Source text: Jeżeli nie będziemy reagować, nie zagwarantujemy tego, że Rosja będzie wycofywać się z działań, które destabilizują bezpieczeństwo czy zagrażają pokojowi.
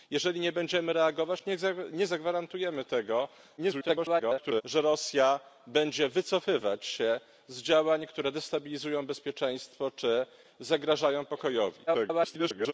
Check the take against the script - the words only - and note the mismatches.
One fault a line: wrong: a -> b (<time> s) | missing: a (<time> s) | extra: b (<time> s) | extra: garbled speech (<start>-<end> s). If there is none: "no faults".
extra: garbled speech (3.6-4.6 s)
extra: garbled speech (11.9-12.7 s)